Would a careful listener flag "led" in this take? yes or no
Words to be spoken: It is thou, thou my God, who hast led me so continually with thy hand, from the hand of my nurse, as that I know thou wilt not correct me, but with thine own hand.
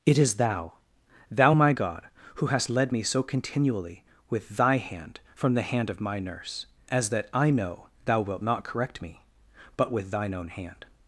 no